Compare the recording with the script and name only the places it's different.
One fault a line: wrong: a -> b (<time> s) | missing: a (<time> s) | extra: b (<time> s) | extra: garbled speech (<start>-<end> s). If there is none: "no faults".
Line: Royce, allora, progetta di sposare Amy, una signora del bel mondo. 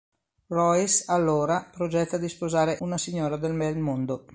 missing: Amy (2.8 s)